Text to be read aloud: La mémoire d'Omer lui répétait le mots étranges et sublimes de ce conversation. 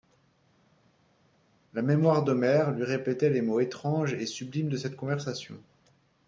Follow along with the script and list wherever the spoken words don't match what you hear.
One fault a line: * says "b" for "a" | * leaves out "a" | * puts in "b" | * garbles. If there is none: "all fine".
* says "les" for "le"
* says "cette" for "ce"